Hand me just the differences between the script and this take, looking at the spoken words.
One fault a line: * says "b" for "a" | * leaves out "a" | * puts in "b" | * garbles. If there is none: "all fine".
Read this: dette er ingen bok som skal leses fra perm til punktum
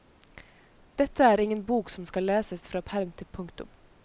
all fine